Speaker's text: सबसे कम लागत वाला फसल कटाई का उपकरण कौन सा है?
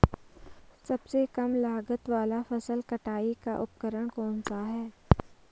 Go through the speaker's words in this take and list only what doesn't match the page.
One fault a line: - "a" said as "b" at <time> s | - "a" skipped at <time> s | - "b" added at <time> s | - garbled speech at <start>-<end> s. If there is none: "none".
none